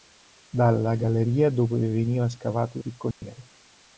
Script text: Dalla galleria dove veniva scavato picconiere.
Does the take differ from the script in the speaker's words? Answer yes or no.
no